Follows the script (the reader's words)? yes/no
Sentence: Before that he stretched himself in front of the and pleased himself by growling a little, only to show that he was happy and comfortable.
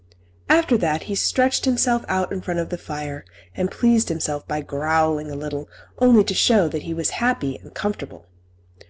no